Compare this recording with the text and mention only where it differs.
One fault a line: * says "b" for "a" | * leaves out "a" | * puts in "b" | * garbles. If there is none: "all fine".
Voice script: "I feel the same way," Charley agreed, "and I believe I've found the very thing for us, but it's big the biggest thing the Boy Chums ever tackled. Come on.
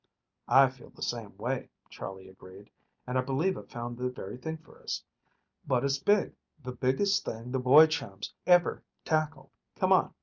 all fine